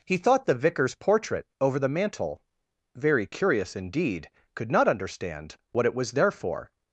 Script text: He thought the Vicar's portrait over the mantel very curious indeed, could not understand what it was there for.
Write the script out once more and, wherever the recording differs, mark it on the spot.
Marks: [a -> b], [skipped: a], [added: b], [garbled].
He thought the Vicar's portrait over the mantel very curious indeed, could not understand what it was there for.